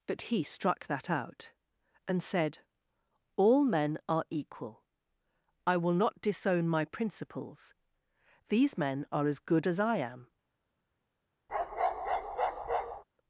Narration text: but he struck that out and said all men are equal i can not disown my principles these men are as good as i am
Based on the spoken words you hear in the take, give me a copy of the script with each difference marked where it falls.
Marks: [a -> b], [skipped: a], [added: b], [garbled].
but he struck that out and said all men are equal i [can -> will] not disown my principles these men are as good as i am